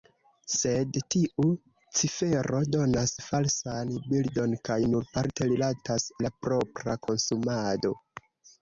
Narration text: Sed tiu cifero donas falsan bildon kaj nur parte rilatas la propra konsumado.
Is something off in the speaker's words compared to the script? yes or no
no